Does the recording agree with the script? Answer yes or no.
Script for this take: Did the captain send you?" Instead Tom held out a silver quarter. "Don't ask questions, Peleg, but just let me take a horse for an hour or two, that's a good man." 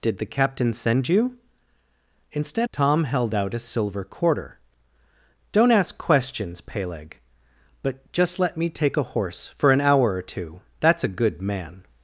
yes